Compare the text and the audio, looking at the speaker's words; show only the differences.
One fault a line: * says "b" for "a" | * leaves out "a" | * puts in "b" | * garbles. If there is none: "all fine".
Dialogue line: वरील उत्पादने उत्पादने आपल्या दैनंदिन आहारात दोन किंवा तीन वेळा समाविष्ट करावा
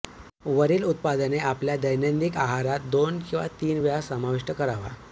* leaves out "उत्पादने"